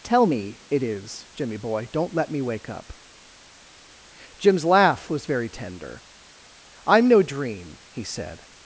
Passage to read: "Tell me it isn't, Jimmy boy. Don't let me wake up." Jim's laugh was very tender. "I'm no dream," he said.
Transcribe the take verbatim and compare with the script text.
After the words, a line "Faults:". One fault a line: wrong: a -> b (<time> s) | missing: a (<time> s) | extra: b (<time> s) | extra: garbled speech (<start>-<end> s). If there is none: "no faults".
"Tell me it is, Jimmy boy. Don't let me wake up." Jim's laugh was very tender. "I'm no dream," he said.
Faults:
wrong: isn't -> is (0.8 s)